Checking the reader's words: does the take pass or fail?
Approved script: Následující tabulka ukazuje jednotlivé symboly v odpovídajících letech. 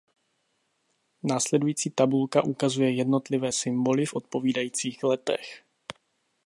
pass